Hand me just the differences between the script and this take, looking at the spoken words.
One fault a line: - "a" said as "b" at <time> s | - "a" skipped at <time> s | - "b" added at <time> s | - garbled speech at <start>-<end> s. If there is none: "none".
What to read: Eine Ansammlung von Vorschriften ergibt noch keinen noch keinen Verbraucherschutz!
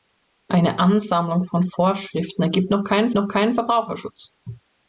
none